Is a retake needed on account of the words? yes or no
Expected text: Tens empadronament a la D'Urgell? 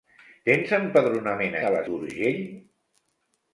no